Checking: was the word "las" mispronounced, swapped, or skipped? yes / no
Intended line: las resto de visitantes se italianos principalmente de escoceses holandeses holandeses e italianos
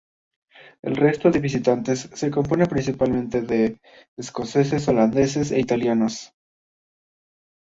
yes